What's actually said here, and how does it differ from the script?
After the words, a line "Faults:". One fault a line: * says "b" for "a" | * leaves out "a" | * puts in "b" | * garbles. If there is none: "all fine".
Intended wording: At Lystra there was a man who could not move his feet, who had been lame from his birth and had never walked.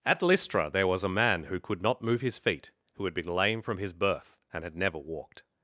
At Lystra there was a man who could not move his feet, who had been lame from his birth and had never walked.
Faults:
all fine